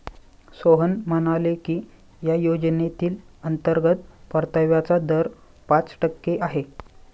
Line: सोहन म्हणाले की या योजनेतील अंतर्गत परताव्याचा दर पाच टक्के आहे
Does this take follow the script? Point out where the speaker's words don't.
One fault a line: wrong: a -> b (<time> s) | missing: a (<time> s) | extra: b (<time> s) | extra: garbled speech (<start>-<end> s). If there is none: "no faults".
no faults